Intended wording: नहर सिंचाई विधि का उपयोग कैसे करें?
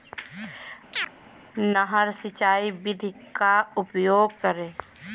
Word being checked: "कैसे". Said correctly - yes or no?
no